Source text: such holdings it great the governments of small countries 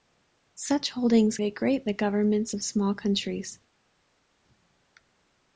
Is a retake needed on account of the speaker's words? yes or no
no